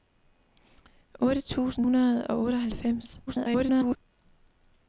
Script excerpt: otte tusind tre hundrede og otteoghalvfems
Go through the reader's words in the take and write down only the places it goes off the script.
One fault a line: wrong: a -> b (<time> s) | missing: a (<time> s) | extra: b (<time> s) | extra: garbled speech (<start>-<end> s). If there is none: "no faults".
missing: tre (1.9 s)
extra: garbled speech (3.3-4.0 s)